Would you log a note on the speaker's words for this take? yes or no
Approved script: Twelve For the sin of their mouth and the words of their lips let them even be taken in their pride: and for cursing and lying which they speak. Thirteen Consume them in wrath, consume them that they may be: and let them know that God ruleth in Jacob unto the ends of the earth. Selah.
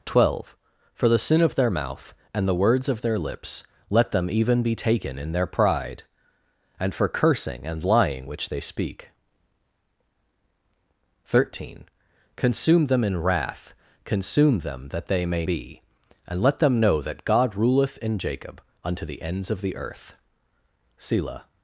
no